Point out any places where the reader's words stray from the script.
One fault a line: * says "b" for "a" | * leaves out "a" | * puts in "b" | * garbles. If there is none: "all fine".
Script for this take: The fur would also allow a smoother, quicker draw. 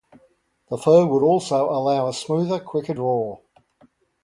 all fine